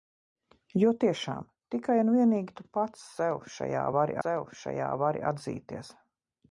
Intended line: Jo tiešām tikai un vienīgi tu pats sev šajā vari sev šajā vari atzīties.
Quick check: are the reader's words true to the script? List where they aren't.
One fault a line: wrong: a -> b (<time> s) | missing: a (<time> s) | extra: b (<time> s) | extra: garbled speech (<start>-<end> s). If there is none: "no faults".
no faults